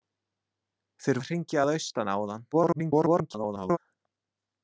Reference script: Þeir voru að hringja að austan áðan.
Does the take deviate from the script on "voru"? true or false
true